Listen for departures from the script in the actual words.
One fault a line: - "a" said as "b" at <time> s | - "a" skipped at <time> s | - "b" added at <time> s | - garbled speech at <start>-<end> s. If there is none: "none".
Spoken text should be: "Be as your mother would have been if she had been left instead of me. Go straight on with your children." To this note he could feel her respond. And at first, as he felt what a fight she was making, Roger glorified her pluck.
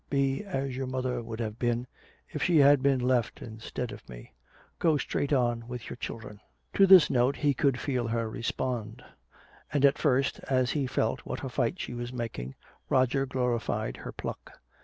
none